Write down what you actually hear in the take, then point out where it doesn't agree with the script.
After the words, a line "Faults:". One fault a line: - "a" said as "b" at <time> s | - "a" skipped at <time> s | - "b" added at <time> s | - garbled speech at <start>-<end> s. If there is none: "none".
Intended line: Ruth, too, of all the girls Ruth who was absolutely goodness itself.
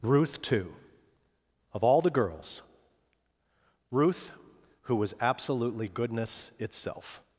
Ruth, too, of all the girls Ruth who was absolutely goodness itself.
Faults:
none